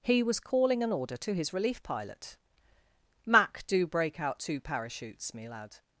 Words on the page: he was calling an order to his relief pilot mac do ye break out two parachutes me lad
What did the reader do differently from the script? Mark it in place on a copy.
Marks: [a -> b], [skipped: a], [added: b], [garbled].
he was calling an order to his relief pilot mac do [skipped: ye] break out two parachutes me lad